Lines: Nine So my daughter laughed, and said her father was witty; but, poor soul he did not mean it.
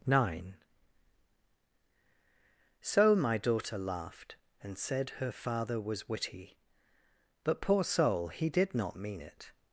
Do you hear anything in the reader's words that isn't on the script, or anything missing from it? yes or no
no